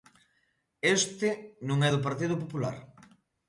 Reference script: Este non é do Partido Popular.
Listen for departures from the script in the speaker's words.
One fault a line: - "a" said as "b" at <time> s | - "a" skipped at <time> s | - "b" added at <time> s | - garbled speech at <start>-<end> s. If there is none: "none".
none